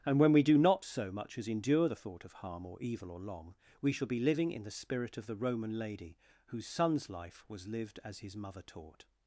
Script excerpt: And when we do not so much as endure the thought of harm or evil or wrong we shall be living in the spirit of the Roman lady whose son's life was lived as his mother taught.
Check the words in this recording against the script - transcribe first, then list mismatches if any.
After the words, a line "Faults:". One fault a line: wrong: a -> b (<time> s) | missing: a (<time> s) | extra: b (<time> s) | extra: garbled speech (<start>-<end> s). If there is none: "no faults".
And when we do not so much as endure the thought of harm or evil or long we shall be living in the spirit of the Roman lady whose son's life was lived as his mother taught.
Faults:
wrong: wrong -> long (3.2 s)